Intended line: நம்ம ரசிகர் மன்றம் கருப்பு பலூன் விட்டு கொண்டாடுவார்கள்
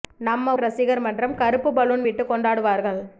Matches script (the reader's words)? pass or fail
pass